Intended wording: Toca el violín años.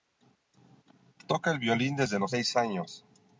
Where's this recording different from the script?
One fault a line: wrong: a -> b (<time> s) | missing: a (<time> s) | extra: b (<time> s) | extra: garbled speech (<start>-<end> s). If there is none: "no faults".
extra: desde los seis (1.9 s)